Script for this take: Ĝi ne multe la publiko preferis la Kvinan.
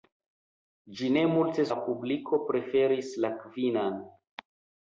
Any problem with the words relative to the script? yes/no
no